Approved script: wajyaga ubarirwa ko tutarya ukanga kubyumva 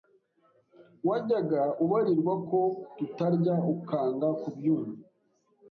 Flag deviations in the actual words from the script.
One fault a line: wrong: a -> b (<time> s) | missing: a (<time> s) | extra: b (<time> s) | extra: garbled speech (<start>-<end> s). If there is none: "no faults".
no faults